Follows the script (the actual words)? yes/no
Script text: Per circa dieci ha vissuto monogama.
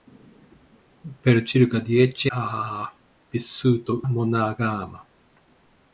yes